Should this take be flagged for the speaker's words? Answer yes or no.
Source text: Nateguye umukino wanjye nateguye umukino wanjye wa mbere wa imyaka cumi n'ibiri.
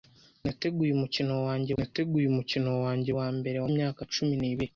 no